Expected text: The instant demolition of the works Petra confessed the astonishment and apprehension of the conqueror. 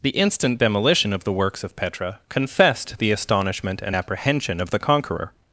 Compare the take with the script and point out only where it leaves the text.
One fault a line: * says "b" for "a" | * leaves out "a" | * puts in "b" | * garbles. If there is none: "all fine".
* puts in "of"